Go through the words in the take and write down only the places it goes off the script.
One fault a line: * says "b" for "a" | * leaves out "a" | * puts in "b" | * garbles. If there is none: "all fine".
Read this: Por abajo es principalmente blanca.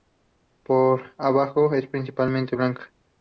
all fine